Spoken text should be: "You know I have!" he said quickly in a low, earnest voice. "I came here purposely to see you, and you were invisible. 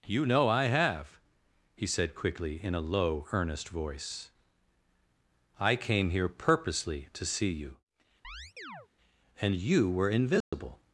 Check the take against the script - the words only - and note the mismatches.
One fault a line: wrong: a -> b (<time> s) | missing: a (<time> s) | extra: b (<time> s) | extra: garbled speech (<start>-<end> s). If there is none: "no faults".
no faults